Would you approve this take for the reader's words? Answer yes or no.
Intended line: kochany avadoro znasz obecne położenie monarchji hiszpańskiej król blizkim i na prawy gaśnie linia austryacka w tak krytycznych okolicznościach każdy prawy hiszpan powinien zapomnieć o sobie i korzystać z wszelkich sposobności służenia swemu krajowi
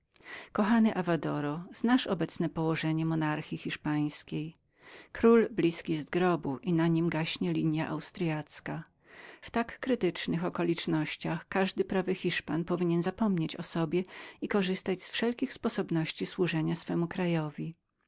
no